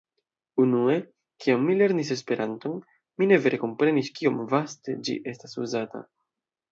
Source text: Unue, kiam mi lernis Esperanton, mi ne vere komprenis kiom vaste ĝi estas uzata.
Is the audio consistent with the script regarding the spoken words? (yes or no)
yes